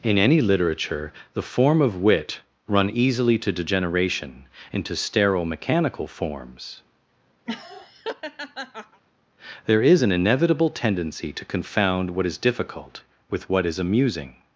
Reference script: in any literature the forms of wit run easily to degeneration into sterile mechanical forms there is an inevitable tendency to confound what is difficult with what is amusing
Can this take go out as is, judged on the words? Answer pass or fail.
fail